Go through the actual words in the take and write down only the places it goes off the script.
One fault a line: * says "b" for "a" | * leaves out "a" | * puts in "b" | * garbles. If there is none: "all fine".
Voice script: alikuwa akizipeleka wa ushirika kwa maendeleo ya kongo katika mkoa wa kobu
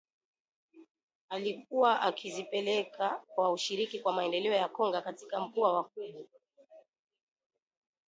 all fine